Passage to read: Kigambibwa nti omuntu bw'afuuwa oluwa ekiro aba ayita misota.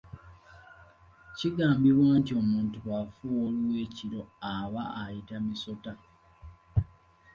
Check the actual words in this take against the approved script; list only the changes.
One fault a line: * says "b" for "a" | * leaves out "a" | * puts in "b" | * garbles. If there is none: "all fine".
all fine